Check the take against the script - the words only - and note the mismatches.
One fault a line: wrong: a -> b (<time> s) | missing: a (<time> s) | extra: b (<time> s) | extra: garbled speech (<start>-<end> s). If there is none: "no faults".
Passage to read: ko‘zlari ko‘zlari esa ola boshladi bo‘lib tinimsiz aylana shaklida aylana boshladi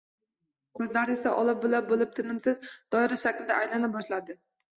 missing: ko‘zlari (1.1 s)
wrong: boshladi -> bula (1.6 s)
wrong: aylana -> doira (3.0 s)